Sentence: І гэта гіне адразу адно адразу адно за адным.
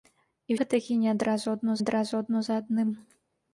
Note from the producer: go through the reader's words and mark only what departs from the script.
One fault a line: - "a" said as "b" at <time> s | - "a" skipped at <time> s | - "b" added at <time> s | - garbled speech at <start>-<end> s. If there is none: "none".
none